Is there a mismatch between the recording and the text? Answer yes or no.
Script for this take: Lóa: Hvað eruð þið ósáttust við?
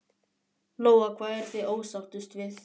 no